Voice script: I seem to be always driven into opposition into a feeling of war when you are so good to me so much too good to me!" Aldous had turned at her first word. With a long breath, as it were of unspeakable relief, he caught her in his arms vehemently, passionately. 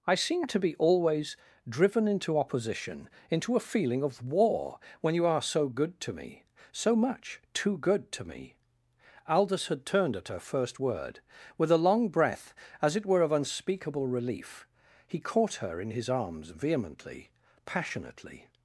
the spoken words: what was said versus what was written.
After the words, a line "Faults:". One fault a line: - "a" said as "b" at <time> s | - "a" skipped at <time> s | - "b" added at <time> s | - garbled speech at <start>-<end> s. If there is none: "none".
I seem to be always driven into opposition into a feeling of war when you are so good to me so much too good to me!" Aldous had turned at her first word. With a long breath, as it were of unspeakable relief, he caught her in his arms vehemently, passionately.
Faults:
none